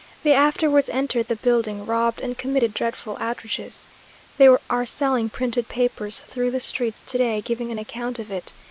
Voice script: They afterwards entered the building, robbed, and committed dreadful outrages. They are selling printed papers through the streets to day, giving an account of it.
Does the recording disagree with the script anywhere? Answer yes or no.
no